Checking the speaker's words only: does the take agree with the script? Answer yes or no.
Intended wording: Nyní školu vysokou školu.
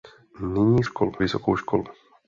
yes